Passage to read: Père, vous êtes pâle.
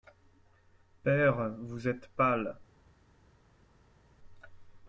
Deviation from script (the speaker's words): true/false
false